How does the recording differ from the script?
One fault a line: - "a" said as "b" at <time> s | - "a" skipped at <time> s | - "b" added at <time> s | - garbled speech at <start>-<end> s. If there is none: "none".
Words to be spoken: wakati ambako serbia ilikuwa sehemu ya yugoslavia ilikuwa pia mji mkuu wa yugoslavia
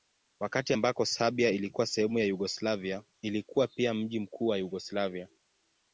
none